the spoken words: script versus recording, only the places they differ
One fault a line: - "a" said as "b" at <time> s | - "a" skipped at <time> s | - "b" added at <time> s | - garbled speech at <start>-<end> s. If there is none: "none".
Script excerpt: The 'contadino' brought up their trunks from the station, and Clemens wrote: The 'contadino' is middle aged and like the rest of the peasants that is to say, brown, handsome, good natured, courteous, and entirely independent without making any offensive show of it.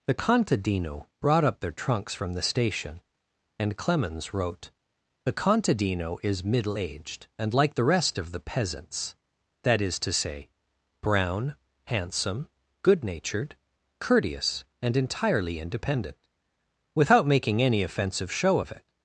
none